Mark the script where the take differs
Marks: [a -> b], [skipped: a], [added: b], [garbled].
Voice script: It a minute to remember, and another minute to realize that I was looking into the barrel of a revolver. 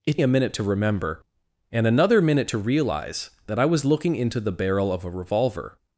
It a minute to remember, and another minute to realize that I was looking into the barrel of a revolver.